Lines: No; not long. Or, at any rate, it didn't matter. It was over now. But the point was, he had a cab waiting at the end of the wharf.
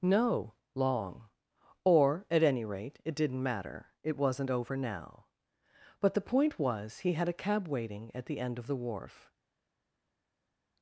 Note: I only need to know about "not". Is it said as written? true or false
false